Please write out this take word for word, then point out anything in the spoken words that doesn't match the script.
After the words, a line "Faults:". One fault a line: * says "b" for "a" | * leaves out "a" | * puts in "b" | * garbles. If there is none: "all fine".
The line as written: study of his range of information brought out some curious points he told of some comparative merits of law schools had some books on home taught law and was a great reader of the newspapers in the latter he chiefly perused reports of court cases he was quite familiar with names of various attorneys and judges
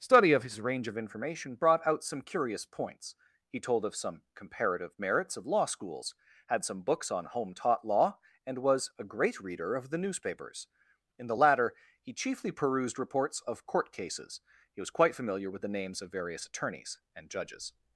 study of his range of information brought out some curious points he told of some comparative merits of law schools had some books on home taught law and was a great reader of the newspapers in the latter he chiefly perused reports of court cases he was quite familiar with the names of various attorneys and judges
Faults:
* puts in "the"